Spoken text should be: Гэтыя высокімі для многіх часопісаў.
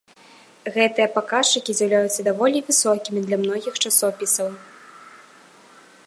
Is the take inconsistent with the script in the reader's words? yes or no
yes